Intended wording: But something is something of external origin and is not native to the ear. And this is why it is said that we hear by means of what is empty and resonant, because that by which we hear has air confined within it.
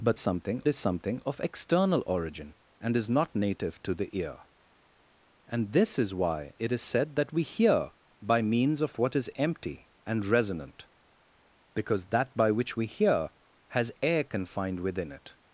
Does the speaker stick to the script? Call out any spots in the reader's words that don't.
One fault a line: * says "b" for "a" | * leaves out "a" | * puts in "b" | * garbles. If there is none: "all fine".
all fine